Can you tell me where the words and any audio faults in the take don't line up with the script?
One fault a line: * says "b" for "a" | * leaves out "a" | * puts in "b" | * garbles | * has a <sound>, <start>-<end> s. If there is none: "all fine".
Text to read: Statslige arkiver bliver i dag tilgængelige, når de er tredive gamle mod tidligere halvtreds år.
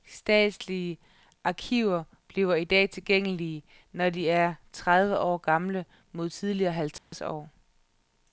* puts in "år"
* has a dropout, 7.0-7.1 s